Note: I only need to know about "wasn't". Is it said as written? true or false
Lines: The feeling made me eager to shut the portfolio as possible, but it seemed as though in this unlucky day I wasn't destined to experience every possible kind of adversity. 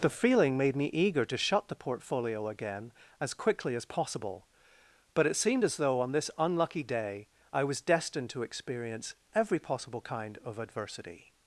false